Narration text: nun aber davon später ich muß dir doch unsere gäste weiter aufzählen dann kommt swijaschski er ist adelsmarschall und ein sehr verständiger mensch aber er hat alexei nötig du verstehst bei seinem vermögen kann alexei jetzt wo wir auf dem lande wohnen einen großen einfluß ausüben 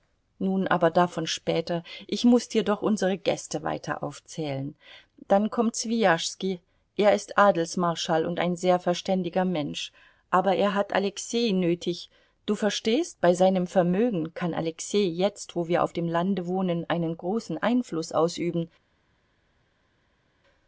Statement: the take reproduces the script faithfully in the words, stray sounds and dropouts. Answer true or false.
true